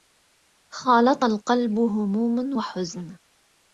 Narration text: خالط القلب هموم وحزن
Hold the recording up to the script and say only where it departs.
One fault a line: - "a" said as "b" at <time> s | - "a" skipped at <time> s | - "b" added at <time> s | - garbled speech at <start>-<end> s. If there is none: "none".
none